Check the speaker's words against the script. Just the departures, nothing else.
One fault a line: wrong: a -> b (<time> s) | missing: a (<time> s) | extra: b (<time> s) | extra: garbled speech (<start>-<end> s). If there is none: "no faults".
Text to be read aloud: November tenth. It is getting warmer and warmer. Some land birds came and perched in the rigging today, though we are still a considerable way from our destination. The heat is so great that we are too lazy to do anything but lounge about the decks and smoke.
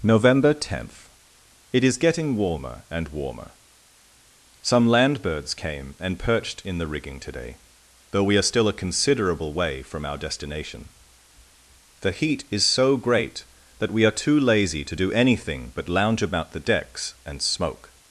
no faults